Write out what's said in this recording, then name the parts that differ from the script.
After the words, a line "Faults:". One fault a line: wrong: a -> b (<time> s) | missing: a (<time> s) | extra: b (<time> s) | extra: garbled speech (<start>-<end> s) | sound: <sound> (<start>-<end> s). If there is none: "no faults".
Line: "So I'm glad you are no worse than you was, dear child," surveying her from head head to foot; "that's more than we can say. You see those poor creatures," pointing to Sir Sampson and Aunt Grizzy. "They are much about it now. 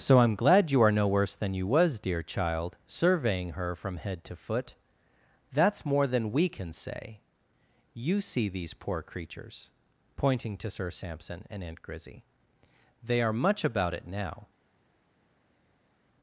"So I'm glad you are no worse than you was, dear child," surveying her from head to foot; "that's more than we can say. You see these poor creatures," pointing to Sir Sampson and Aunt Grizzy. "They are much about it now.
Faults:
missing: head (4.2 s)
wrong: those -> these (8.5 s)